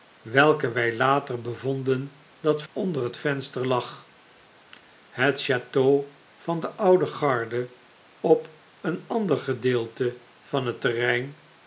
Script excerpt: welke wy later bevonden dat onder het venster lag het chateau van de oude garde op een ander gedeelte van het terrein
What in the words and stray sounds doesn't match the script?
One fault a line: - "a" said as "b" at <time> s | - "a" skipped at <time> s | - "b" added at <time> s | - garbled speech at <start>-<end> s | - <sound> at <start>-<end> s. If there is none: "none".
none